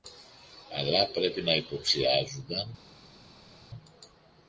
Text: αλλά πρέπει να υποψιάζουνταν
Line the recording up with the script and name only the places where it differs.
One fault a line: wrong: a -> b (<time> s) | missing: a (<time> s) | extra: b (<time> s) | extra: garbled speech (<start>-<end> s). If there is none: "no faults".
no faults